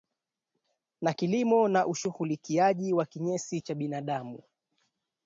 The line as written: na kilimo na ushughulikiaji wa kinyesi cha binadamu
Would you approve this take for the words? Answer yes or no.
yes